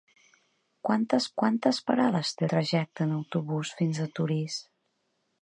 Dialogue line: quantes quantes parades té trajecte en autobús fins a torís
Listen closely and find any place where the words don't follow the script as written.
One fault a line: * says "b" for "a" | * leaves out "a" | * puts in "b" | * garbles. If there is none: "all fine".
all fine